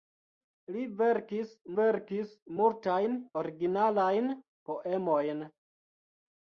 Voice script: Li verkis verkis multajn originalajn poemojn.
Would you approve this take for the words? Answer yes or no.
yes